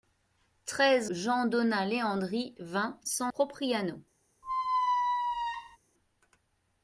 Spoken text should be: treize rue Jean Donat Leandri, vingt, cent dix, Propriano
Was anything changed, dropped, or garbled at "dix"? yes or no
yes